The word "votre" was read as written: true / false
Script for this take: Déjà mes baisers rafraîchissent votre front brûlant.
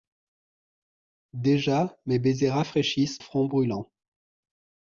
false